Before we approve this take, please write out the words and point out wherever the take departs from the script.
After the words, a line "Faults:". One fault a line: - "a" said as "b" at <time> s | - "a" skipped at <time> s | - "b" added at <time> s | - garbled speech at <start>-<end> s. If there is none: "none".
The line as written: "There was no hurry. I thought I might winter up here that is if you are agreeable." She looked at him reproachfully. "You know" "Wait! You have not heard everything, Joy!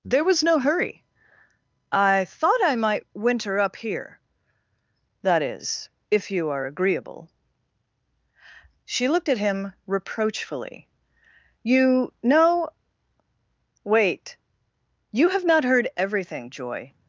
"There was no hurry. I thought I might winter up here that is if you are agreeable." She looked at him reproachfully. "You know" "Wait! You have not heard everything, Joy!
Faults:
none